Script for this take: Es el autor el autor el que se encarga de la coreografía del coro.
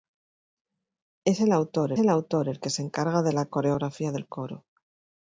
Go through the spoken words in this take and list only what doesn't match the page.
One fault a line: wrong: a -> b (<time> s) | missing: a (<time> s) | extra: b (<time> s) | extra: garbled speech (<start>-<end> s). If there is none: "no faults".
no faults